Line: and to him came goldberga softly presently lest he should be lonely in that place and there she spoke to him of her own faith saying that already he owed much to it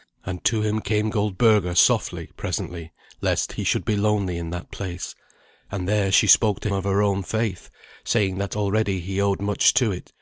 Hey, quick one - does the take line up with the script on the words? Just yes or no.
no